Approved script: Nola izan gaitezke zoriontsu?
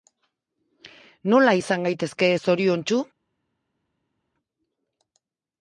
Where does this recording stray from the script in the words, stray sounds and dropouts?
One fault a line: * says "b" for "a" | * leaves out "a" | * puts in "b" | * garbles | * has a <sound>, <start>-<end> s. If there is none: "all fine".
all fine